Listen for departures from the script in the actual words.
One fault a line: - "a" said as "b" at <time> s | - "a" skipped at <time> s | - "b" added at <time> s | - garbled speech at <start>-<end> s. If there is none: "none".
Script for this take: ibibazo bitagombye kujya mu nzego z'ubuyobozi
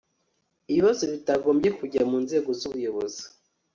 none